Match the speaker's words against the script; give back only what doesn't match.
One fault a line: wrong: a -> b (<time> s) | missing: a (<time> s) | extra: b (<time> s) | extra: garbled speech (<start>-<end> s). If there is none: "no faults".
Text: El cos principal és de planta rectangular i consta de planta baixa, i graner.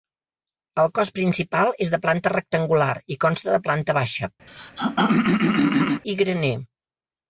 no faults